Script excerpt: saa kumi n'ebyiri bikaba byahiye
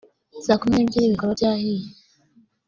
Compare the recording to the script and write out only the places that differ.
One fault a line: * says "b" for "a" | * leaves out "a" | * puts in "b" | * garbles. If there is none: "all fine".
all fine